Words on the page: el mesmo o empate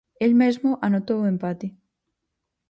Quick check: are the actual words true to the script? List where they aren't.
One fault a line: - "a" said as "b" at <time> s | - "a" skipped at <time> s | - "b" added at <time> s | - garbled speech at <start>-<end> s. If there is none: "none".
- "anotou" added at 0.8 s